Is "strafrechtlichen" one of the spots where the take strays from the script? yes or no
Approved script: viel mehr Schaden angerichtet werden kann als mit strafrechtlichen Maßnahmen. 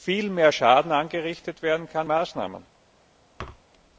yes